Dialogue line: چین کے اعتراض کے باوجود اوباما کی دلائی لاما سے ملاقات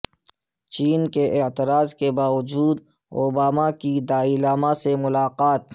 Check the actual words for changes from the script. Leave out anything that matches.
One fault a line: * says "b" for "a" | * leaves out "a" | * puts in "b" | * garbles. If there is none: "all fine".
all fine